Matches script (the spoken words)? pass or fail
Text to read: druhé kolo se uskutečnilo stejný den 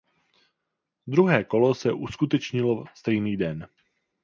pass